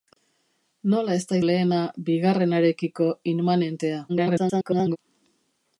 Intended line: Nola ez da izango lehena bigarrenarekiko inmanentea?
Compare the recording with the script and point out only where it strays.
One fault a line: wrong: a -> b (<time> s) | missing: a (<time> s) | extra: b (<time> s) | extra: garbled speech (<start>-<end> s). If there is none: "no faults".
missing: izango (1.4 s)
extra: garbled speech (4.1-5.0 s)